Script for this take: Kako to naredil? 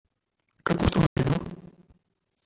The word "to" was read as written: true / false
true